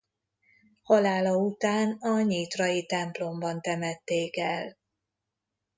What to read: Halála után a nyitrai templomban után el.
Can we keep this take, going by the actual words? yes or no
no